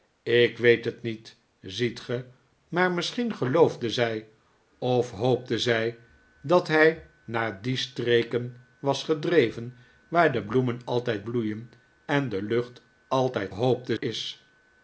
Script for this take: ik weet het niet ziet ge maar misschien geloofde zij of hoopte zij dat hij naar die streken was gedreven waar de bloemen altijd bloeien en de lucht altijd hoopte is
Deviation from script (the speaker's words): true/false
false